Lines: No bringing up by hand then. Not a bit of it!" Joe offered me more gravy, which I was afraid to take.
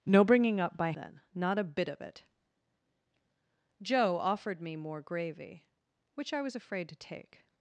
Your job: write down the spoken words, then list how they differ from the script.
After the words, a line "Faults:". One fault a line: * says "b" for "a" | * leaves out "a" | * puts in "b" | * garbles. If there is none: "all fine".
No bringing up by then. Not a bit of it!" Joe offered me more gravy, which I was afraid to take.
Faults:
* leaves out "hand"